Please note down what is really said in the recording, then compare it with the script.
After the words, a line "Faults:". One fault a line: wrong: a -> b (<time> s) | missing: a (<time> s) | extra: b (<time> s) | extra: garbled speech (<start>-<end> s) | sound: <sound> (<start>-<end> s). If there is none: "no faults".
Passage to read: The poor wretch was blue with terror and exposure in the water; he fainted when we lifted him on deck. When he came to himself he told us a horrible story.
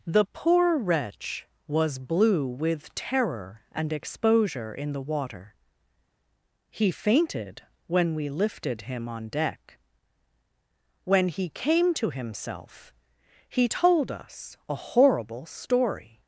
The poor wretch was blue with terror and exposure in the water; he fainted when we lifted him on deck. When he came to himself he told us a horrible story.
Faults:
no faults